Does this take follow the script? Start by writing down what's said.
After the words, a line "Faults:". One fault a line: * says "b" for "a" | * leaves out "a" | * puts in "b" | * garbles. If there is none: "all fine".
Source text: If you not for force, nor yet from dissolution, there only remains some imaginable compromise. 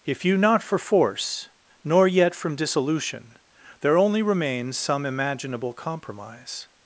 If you not for force, nor yet from dissolution, there only remains some imaginable compromise.
Faults:
all fine